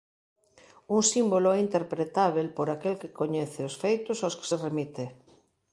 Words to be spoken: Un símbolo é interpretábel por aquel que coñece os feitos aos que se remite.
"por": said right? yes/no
yes